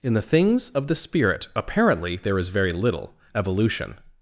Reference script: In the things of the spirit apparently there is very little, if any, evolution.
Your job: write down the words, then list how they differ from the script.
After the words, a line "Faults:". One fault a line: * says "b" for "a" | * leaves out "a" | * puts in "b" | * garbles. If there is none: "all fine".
In the things of the spirit apparently there is very little, evolution.
Faults:
* leaves out "if any"